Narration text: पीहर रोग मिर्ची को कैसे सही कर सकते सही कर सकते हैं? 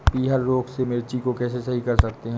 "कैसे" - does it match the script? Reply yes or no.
yes